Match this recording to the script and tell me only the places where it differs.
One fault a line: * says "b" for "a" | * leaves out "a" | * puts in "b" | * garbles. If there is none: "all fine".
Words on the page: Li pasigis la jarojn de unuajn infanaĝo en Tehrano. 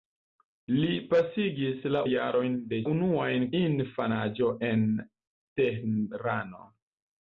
all fine